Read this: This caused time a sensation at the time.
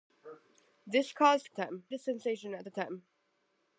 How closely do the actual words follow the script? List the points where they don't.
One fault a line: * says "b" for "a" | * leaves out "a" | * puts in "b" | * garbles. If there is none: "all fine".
all fine